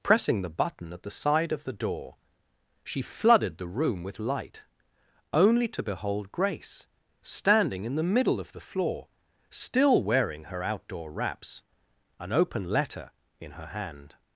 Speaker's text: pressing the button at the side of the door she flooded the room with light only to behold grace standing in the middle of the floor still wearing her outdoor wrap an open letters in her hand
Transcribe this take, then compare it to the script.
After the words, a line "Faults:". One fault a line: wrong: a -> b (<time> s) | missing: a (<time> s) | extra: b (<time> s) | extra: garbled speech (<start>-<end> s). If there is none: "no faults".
pressing the button at the side of the door she flooded the room with light only to behold grace standing in the middle of the floor still wearing her outdoor wraps an open letter in her hand
Faults:
wrong: wrap -> wraps (11.1 s)
wrong: letters -> letter (12.7 s)